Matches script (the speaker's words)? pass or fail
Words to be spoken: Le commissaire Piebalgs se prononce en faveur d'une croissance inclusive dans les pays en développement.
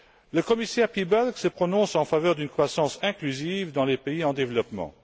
pass